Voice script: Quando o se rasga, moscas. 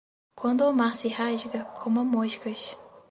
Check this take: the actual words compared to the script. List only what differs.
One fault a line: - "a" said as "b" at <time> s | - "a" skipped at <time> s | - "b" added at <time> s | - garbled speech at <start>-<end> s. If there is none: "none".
- "mar" added at 0.7 s
- "coma" added at 1.6 s